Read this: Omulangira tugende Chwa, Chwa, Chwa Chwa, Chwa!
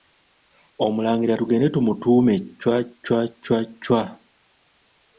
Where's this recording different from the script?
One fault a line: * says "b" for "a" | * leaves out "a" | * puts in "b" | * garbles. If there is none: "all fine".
* says "tumutuume" for "Chwa"